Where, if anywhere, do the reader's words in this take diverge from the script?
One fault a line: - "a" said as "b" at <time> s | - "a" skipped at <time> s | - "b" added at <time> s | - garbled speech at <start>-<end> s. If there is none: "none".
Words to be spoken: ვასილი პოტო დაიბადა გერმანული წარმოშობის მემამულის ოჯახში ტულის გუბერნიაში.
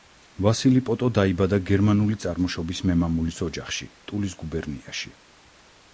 none